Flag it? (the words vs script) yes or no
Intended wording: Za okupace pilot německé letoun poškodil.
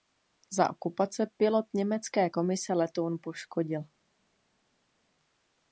yes